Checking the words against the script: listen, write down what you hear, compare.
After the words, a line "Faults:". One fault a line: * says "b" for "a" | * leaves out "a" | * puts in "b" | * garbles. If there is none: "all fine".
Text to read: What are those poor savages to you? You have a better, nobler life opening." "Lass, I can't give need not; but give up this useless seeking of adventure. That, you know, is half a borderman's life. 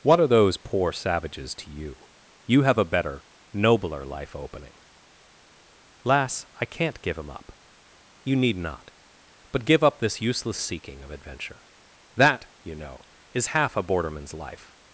What are those poor savages to you? You have a better, nobler life opening." "Lass, I can't give him up." "You need not; but give up this useless seeking of adventure. That, you know, is half a borderman's life.
Faults:
* puts in "him up You"